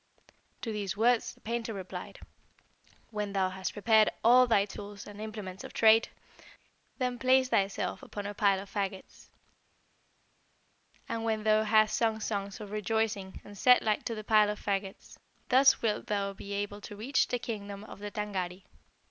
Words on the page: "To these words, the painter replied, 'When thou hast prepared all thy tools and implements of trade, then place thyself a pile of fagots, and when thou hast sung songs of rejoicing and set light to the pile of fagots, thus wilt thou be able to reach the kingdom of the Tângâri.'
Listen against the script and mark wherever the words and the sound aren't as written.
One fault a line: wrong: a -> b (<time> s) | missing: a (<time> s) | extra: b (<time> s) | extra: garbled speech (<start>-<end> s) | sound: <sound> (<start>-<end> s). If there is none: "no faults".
extra: upon (8.0 s)